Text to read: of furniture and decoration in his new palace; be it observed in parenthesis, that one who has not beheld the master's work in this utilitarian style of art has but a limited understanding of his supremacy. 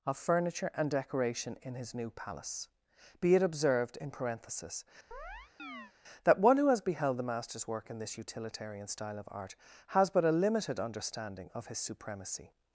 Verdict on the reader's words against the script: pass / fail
fail